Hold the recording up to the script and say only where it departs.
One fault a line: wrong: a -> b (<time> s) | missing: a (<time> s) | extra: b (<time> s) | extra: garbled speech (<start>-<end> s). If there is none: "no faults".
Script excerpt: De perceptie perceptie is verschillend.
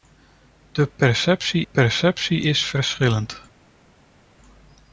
no faults